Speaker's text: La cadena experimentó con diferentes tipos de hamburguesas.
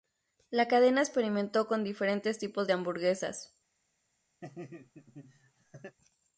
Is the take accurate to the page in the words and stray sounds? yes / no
no